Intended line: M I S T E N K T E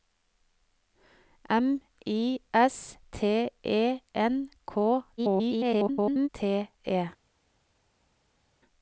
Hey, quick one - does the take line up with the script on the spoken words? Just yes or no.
no